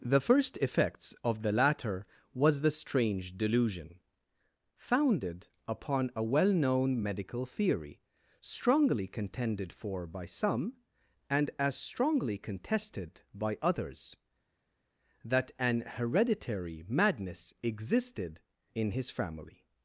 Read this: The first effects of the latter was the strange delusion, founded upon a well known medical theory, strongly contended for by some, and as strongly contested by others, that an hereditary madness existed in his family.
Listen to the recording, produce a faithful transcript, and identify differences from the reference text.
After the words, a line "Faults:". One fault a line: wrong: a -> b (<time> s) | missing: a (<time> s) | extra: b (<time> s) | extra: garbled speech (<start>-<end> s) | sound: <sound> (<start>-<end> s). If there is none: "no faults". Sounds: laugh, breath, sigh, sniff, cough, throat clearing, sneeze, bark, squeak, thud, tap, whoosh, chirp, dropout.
The first effects of the latter was the strange delusion, founded upon a well known medical theory, strongly contended for by some, and as strongly contested by others, that an hereditary madness existed in his family.
Faults:
no faults